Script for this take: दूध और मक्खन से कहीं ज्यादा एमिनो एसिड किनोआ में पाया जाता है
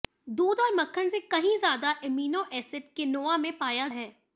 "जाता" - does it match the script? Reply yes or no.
no